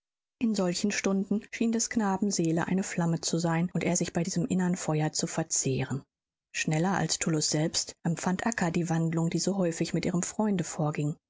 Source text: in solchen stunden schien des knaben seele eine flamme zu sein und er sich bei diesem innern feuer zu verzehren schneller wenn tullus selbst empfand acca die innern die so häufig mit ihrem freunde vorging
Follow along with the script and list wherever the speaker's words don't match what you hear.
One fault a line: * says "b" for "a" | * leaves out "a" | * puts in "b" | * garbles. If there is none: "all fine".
* says "als" for "wenn"
* says "wandlung" for "innern"